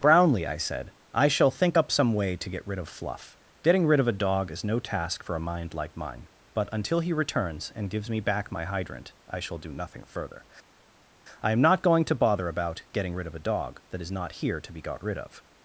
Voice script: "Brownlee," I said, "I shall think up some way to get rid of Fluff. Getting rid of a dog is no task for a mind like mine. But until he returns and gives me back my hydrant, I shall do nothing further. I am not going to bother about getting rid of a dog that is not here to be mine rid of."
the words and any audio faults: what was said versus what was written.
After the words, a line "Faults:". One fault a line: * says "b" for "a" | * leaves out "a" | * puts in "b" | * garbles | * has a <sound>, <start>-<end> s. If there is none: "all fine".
"Brownlee," I said, "I shall think up some way to get rid of Fluff. Getting rid of a dog is no task for a mind like mine. But until he returns and gives me back my hydrant, I shall do nothing further. I am not going to bother about getting rid of a dog that is not here to be got rid of."
Faults:
* says "got" for "mine"